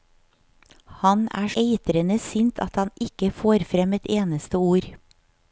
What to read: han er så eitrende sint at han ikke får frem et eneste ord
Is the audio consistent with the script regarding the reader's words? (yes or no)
no